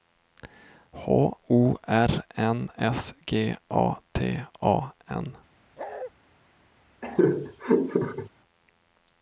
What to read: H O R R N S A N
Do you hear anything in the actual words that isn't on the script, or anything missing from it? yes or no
yes